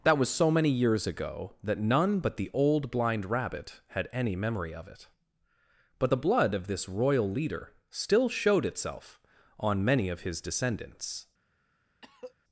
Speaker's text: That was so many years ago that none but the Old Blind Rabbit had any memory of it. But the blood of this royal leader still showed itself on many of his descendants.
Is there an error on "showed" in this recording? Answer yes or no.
no